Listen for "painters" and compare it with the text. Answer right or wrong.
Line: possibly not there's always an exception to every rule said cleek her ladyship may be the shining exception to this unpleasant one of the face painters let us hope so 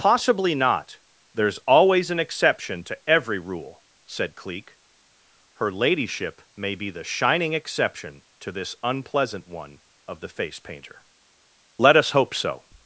wrong